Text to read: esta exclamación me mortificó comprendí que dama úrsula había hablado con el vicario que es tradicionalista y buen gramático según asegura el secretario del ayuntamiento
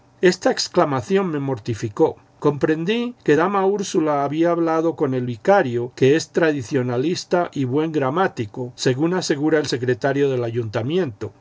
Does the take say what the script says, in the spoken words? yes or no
yes